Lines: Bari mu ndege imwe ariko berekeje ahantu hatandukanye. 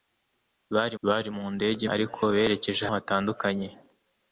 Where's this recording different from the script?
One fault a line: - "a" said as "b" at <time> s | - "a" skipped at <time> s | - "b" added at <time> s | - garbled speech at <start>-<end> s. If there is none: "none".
- "bari" added at 1.1 s
- "imwe" skipped at 1.8 s
- "ahantu" skipped at 2.8 s